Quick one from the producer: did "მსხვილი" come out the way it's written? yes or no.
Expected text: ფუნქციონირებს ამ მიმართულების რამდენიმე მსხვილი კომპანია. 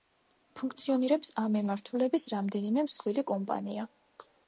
yes